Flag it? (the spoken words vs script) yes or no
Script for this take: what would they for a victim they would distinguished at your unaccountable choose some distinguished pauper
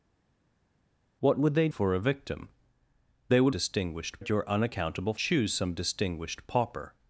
no